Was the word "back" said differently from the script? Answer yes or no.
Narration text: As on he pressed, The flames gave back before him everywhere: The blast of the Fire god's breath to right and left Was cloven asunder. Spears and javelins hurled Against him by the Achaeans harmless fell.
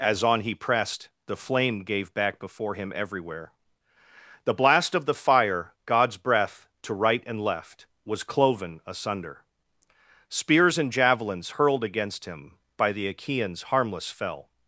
no